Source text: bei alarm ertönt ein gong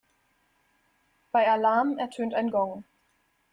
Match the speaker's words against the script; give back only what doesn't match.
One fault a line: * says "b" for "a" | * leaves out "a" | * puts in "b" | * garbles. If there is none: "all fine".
all fine